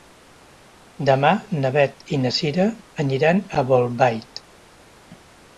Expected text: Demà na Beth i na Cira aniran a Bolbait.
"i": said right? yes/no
yes